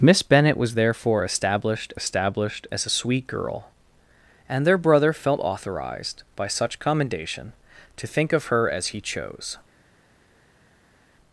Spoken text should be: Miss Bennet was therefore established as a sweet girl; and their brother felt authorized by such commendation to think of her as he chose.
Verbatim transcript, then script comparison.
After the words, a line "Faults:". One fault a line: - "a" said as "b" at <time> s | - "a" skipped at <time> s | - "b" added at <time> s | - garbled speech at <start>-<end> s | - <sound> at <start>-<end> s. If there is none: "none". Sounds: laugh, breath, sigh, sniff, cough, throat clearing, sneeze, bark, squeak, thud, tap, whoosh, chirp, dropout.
Miss Bennet was therefore established established as a sweet girl; and their brother felt authorized by such commendation to think of her as he chose.
Faults:
- "established" added at 1.9 s